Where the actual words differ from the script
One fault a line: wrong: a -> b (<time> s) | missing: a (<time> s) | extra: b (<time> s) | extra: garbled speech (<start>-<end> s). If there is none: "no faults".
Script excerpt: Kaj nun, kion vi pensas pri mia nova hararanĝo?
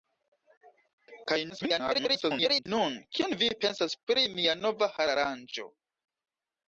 extra: garbled speech (1.5-2.7 s)